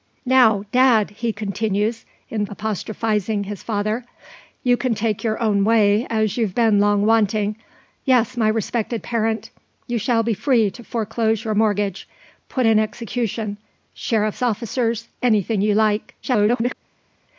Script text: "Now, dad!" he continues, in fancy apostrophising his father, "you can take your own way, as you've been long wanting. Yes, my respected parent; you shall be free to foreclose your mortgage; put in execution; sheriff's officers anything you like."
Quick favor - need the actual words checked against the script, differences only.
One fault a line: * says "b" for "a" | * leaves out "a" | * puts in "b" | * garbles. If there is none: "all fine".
* leaves out "fancy"
* garbles